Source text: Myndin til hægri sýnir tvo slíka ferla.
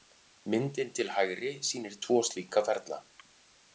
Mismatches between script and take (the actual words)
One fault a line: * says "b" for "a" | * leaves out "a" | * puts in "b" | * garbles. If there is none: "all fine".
all fine